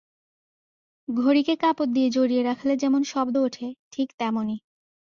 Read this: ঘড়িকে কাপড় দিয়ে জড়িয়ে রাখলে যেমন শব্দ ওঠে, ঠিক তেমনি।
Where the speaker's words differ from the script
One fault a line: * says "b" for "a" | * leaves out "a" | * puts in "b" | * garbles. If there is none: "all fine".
all fine